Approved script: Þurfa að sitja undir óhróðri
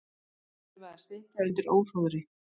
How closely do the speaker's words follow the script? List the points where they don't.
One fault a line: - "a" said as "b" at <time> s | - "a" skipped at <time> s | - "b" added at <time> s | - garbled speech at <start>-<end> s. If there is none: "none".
none